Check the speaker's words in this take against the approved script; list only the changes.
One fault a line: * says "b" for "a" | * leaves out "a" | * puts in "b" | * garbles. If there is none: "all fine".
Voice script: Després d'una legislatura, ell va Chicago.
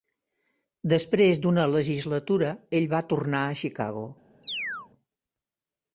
* puts in "tornar a"